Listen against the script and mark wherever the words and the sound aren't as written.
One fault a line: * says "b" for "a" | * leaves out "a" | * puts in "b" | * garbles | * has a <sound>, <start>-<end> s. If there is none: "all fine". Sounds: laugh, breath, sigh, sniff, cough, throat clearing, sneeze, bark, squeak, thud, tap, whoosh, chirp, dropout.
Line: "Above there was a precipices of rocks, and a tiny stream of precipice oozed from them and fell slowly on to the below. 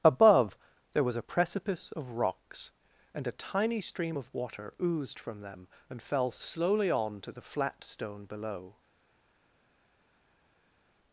* says "precipice" for "precipices"
* says "water" for "precipice"
* puts in "flat stone"